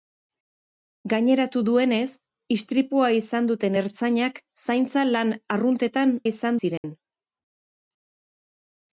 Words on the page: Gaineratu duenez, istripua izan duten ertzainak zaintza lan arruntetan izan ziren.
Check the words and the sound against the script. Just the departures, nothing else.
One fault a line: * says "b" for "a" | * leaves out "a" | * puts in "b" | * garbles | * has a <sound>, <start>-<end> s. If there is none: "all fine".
* has a dropout, 6.8-6.8 s